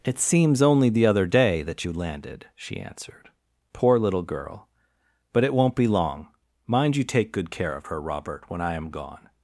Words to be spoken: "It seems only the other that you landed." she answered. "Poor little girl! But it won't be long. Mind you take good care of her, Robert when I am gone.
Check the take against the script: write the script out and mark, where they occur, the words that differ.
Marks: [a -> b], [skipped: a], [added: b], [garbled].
"It seems only the other [added: day] that you landed." she answered. "Poor little girl! But it won't be long. Mind you take good care of her, Robert when I am gone.